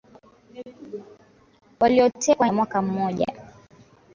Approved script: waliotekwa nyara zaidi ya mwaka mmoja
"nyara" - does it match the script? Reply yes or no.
no